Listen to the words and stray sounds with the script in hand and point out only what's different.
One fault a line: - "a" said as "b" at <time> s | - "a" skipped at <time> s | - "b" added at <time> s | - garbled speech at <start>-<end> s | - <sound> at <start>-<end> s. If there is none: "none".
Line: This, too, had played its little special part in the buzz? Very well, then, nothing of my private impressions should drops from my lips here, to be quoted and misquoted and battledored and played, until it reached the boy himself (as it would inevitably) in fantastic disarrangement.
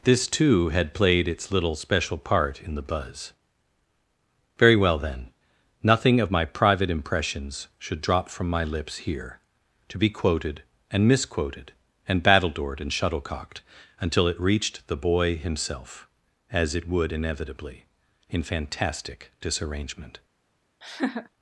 - "drops" said as "drop" at 8.0 s
- "played" said as "shuttlecocked" at 12.9 s
- laugh at 20.8-21.3 s